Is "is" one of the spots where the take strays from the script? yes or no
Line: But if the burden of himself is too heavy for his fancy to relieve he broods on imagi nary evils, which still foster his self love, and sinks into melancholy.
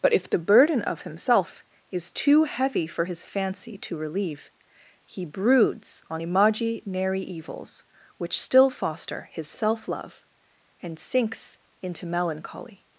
no